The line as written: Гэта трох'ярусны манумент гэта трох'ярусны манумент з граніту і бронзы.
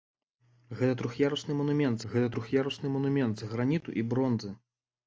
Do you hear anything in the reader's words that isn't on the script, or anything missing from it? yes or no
no